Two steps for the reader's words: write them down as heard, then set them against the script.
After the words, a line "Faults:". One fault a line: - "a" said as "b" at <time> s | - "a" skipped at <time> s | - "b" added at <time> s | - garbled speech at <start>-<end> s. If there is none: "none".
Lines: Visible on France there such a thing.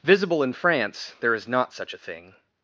Visible in France there is not such a thing.
Faults:
- "on" said as "in" at 0.4 s
- "is not" added at 1.4 s